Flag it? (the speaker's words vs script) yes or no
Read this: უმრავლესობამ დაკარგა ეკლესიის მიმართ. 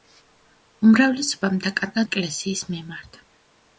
no